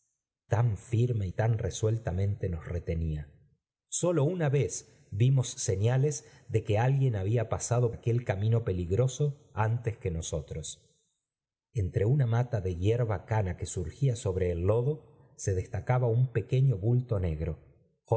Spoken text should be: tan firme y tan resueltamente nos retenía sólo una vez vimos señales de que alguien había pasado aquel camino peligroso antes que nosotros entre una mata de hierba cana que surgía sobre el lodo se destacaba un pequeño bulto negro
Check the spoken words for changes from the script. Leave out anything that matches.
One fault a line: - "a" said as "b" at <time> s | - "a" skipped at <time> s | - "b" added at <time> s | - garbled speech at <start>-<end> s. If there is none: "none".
none